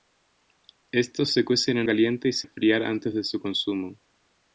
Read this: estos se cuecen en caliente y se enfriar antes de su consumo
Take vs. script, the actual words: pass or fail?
pass